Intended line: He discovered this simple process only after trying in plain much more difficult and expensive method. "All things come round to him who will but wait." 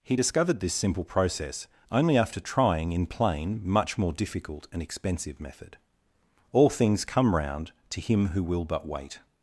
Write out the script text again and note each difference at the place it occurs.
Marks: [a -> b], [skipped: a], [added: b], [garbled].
He discovered this simple process only after trying in plain much more difficult and expensive method. "All things come round to him who will but wait."